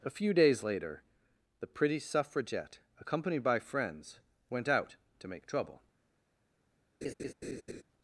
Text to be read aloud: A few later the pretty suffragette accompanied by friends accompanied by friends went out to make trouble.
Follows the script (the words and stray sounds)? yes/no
no